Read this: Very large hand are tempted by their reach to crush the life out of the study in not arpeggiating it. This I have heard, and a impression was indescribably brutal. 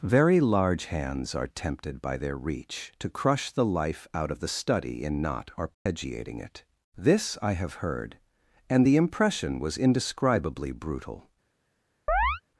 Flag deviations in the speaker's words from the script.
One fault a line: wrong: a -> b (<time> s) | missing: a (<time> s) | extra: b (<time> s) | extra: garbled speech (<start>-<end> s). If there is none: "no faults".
wrong: hand -> hands (0.8 s)
wrong: a -> the (8.8 s)